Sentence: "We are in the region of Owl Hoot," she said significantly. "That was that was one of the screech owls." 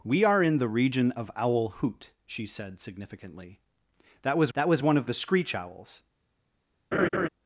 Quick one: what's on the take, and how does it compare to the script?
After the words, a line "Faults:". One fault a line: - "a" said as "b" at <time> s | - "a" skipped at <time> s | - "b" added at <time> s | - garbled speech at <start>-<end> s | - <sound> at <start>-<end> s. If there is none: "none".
"We are in the region of Owl Hoot," she said significantly. "That was that was one of the screech owls."
Faults:
- laugh at 6.9-7.3 s